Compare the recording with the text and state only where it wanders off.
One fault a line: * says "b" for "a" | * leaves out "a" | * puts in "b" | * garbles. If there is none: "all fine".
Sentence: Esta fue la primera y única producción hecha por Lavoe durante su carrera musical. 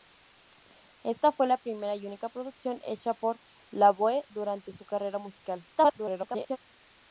* garbles